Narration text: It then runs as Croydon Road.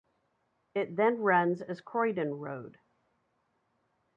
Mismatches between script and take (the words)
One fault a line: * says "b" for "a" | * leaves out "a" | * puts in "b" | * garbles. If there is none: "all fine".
all fine